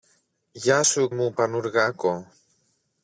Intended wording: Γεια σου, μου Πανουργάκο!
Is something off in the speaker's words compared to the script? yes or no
no